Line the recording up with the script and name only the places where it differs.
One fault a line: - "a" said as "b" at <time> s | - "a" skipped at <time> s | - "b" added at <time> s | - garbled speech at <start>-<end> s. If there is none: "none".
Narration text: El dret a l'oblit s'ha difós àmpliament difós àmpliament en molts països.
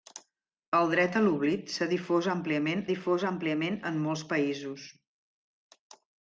none